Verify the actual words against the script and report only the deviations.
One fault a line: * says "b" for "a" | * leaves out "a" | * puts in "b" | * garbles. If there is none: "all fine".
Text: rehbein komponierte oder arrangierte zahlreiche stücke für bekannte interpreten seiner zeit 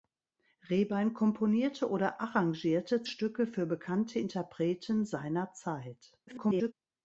* leaves out "zahlreiche"
* garbles